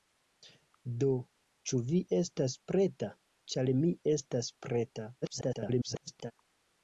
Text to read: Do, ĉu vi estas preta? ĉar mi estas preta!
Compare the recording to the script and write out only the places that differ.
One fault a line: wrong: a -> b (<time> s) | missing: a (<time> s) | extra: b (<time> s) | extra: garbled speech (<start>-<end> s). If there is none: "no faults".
extra: garbled speech (5.2-6.3 s)